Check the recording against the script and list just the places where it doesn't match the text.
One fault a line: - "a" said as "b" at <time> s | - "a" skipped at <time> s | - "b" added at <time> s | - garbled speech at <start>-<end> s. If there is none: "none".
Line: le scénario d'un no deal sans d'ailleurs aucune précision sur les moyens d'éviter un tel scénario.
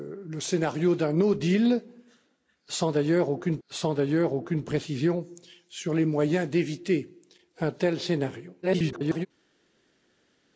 - "sans d'ailleurs aucune" added at 3.7 s
- garbled speech at 8.6-9.3 s